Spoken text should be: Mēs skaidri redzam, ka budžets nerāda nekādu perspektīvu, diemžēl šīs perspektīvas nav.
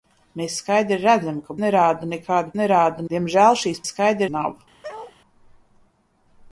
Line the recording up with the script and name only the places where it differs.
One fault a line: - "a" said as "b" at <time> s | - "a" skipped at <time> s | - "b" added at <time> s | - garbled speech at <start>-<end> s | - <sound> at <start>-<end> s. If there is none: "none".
- "budžets" skipped at 1.6 s
- "perspektīvu" said as "nerāda" at 2.6 s
- "perspektīvas" said as "skaidri" at 3.9 s
- bark at 4.8-5.2 s